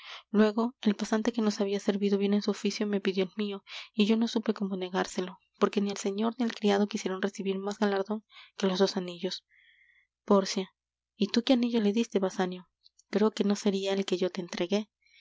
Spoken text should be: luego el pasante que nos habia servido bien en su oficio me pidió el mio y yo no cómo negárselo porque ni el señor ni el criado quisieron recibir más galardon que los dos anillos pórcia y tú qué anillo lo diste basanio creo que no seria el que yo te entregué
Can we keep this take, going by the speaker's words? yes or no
no